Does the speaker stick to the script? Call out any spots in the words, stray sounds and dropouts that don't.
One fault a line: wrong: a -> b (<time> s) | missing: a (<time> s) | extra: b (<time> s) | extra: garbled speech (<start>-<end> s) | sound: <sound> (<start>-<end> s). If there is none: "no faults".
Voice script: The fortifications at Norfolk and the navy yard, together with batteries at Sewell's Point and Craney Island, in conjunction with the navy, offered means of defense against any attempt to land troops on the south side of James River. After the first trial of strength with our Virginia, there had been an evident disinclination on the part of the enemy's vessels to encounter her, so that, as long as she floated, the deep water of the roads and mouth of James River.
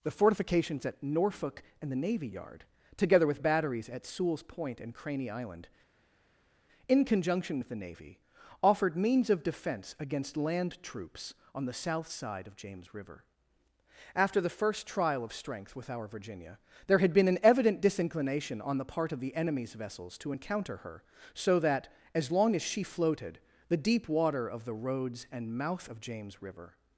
missing: any attempt to (10.4 s)